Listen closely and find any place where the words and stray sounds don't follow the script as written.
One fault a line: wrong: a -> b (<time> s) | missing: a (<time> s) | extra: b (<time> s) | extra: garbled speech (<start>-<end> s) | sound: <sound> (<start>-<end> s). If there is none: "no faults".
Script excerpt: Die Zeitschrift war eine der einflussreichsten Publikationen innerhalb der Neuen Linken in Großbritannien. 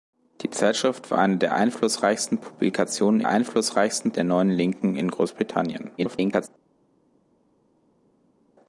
wrong: innerhalb -> einflussreichsten (3.3 s)
extra: garbled speech (6.0-6.5 s)